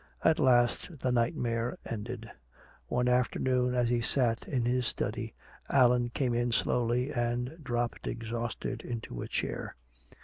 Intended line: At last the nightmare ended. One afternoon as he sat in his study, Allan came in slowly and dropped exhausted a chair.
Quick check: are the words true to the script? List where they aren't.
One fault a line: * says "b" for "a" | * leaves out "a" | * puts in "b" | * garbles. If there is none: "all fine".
* puts in "into"